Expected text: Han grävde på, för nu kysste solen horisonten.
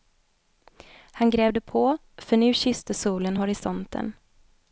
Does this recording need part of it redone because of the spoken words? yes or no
no